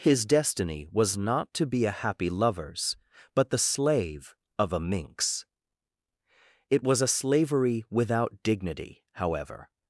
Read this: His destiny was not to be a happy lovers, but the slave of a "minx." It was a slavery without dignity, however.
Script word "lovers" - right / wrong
right